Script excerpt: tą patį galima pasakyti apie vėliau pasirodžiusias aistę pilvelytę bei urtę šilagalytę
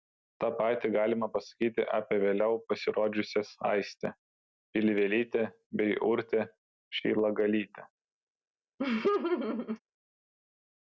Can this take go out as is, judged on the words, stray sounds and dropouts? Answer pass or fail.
fail